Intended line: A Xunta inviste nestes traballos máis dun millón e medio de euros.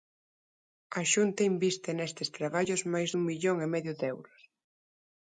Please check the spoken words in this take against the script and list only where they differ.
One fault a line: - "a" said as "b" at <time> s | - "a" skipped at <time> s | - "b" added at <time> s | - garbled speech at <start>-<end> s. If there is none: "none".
none